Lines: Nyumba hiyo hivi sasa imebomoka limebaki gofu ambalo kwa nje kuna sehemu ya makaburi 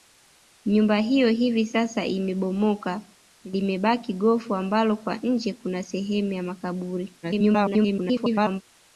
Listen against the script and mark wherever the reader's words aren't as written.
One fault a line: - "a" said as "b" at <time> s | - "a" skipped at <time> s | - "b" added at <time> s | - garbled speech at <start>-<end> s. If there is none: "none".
- garbled speech at 7.2-8.6 s